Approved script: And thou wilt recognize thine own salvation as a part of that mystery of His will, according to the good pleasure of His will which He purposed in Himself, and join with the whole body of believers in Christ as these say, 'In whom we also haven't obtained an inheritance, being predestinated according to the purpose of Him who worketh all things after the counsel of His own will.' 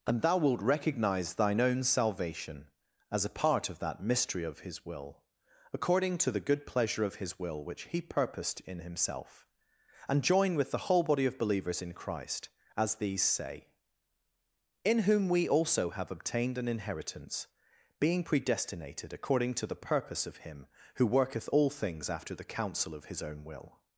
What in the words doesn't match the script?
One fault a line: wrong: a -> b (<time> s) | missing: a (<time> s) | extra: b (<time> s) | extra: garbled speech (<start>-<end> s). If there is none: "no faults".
wrong: haven't -> have (15.9 s)